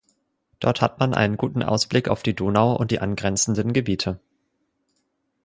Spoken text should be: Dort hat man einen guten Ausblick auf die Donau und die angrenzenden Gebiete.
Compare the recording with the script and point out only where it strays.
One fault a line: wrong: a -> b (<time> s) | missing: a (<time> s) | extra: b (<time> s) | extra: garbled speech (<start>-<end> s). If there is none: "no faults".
no faults